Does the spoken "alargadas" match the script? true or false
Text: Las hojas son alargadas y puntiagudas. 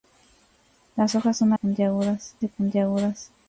false